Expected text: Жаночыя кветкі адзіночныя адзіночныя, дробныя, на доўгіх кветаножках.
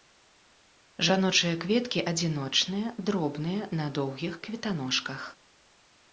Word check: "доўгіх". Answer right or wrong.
right